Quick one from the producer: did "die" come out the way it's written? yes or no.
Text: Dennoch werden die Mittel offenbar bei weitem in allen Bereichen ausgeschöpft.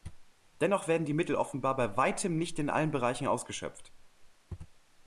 yes